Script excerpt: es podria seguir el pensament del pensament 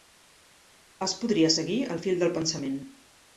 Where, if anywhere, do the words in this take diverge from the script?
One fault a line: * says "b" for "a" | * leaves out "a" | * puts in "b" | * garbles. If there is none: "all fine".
* says "fil" for "pensament"